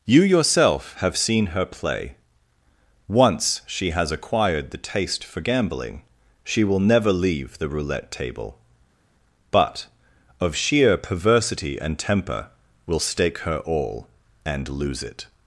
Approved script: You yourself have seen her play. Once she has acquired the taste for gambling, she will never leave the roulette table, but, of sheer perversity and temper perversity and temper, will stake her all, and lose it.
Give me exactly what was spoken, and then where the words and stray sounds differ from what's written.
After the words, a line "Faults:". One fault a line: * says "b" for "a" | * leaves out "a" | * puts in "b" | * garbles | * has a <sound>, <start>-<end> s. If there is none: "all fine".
You yourself have seen her play. Once she has acquired the taste for gambling, she will never leave the roulette table, but, of sheer perversity and temper, will stake her all, and lose it.
Faults:
* leaves out "perversity and temper"